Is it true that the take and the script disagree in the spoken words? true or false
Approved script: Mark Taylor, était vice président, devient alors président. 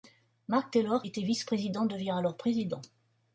false